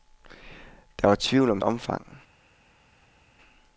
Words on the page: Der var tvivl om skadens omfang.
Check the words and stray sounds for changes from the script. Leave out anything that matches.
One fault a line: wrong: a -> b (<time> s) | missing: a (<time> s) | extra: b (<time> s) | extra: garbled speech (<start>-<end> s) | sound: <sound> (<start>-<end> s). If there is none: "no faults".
missing: skadens (1.6 s)